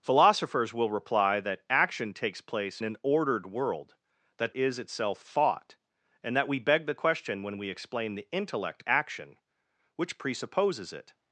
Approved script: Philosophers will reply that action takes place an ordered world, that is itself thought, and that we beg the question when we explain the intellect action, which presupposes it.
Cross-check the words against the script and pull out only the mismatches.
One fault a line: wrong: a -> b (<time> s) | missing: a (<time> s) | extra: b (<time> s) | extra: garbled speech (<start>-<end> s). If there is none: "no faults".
no faults